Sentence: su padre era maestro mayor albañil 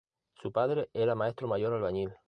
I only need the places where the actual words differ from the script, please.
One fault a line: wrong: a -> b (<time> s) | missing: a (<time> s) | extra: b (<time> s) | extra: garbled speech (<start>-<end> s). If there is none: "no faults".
no faults